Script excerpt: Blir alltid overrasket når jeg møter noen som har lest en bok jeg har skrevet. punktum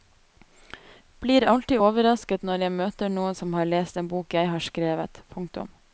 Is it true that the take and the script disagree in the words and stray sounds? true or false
false